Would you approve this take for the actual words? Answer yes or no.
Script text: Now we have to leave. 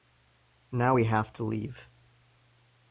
yes